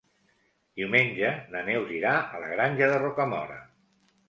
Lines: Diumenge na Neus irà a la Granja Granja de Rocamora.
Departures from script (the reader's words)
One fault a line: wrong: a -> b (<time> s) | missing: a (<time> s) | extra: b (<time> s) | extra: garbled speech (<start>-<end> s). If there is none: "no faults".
missing: Granja (2.9 s)